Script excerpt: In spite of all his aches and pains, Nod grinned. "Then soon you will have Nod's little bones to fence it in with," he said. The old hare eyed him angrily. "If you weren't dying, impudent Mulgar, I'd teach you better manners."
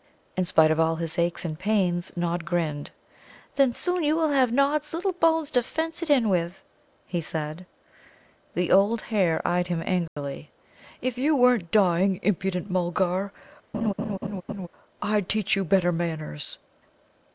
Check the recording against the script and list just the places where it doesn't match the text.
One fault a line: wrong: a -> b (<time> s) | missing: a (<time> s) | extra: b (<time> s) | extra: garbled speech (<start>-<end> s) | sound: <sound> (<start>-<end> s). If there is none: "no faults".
sound: dropout (10.1-10.2 s)
sound: laugh (13.7-14.7 s)